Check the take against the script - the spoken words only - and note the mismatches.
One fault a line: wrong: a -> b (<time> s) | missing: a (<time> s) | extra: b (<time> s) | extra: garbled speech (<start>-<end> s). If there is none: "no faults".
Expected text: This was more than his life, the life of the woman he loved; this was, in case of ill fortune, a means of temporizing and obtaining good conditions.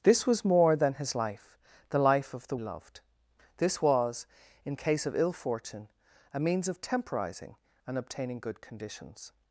missing: woman he (2.6 s)